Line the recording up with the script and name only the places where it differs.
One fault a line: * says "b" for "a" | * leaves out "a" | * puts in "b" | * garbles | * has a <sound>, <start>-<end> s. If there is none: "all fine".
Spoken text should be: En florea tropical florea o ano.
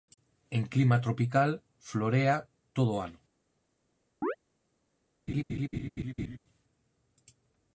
* says "clima" for "florea"
* puts in "todo"
* has a chirp, 4.2-4.4 s
* has a laugh, 5.3-6.4 s